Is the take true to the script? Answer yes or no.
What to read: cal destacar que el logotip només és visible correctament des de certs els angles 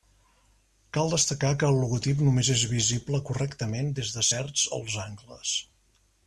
yes